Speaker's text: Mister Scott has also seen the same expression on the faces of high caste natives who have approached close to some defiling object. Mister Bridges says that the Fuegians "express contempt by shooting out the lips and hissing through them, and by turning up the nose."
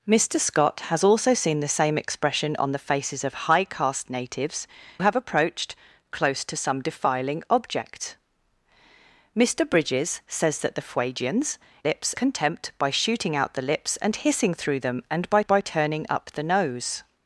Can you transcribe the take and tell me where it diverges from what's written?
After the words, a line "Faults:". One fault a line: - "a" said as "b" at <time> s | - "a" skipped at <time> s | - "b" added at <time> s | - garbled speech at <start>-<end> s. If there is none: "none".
Mister Scott has also seen the same expression on the faces of high caste natives have approached close to some defiling object. Mister Bridges says that the Fuegians "lips contempt by shooting out the lips and hissing through them, and by by turning up the nose."
Faults:
- "who" skipped at 4.7 s
- "express" said as "lips" at 11.8 s
- "by" added at 15.5 s